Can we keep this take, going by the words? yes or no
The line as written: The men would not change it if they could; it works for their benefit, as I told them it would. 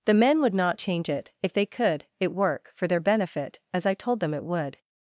no